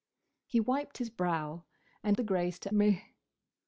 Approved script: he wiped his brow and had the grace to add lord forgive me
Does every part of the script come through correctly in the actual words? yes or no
no